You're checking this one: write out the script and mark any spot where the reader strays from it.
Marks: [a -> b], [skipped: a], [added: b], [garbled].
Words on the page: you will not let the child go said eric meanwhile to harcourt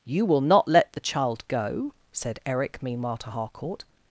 you will not let the child go said eric meanwhile to harcourt